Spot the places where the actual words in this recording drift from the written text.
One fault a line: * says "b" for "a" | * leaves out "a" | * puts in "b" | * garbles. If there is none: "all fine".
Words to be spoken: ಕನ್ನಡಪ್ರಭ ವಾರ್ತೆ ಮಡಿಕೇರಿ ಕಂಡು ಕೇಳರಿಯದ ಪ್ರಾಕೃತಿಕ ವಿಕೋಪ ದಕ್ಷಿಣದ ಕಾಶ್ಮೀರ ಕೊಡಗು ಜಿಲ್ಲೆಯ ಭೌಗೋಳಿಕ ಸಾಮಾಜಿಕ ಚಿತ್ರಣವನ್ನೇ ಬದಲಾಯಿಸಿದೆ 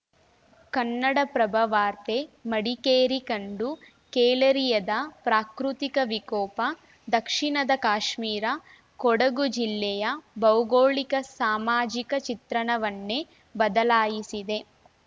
all fine